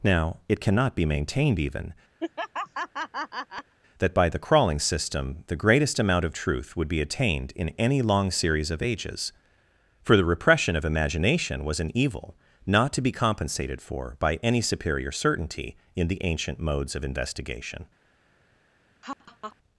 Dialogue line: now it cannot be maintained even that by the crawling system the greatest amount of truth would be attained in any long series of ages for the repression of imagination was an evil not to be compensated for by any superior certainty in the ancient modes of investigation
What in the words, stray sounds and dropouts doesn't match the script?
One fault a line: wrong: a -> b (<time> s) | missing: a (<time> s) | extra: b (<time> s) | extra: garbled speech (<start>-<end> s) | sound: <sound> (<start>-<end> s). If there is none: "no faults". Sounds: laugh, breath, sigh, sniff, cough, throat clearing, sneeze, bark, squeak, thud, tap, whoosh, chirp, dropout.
sound: laugh (2.2-3.7 s)
sound: laugh (19.0-19.6 s)